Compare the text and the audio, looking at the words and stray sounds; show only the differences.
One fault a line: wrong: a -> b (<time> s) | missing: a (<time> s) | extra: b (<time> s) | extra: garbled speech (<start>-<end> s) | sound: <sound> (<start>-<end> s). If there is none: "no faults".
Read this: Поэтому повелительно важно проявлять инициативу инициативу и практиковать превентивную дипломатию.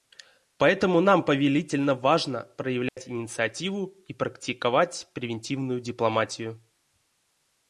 extra: нам (1.0 s)
sound: dropout (2.9-3.0 s)
missing: инициативу (4.0 s)